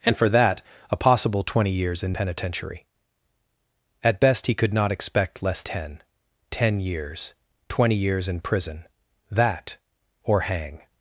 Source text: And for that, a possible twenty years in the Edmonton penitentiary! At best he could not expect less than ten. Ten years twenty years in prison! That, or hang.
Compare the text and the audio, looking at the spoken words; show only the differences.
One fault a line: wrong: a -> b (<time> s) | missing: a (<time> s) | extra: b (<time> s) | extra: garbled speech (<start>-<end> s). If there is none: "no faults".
missing: the Edmonton (2.1 s)
missing: than (5.6 s)